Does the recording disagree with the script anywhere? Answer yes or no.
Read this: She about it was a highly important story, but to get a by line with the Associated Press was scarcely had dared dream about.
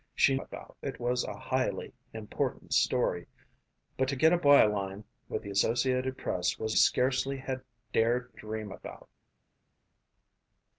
no